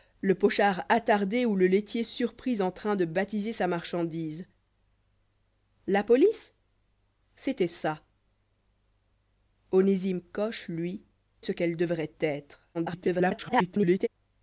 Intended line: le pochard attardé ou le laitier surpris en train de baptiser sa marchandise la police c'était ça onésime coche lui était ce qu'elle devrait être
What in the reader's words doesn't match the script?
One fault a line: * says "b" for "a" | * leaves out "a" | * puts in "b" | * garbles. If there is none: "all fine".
* leaves out "était"
* garbles